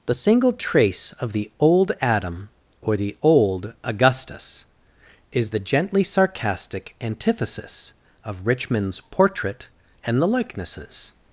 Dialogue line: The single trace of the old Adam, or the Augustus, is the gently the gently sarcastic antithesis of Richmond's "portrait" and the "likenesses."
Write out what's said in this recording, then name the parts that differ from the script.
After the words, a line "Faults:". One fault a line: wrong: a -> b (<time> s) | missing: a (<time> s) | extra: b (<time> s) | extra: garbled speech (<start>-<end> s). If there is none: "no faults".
The single trace of the old Adam, or the old Augustus, is the gently sarcastic antithesis of Richmond's "portrait" and the "likenesses."
Faults:
extra: old (3.2 s)
missing: the gently (6.0 s)